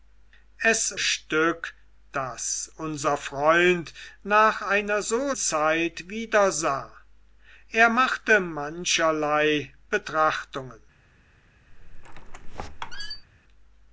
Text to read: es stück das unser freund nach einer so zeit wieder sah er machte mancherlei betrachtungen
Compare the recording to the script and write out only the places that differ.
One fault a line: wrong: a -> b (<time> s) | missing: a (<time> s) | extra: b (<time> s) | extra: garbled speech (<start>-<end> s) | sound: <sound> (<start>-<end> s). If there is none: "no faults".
sound: squeak (11.7-13.3 s)